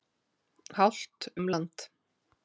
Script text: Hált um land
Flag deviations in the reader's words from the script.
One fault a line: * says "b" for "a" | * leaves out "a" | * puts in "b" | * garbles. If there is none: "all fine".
all fine